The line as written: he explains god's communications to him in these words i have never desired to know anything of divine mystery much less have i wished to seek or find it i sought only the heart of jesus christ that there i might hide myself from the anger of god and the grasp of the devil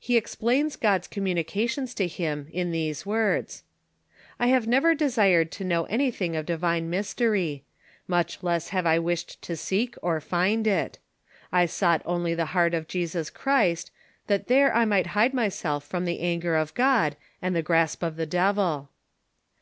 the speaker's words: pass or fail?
pass